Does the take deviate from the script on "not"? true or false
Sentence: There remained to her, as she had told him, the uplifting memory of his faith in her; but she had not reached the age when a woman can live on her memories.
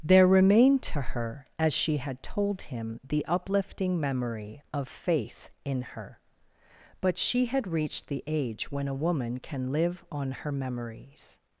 true